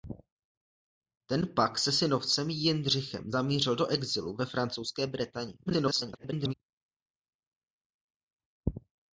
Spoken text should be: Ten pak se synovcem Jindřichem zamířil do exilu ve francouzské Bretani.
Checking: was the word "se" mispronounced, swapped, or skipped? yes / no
no